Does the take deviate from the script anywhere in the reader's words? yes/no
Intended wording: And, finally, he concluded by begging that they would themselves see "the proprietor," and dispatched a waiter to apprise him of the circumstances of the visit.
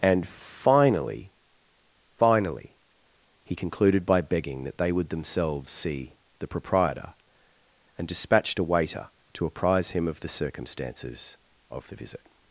yes